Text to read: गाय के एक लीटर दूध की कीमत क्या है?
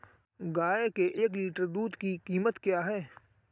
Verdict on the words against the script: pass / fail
pass